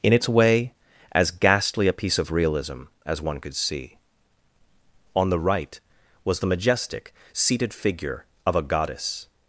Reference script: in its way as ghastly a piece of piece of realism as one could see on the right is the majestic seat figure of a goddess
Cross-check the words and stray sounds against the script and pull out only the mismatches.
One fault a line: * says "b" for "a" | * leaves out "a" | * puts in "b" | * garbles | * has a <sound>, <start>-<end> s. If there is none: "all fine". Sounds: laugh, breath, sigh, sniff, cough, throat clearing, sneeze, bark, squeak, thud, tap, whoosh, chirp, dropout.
* leaves out "piece of"
* says "was" for "is"
* says "seated" for "seat"